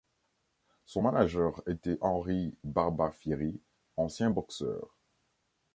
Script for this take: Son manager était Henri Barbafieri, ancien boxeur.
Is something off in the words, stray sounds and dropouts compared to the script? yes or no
no